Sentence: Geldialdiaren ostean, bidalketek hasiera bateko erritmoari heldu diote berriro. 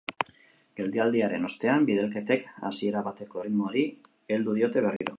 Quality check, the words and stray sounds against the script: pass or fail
fail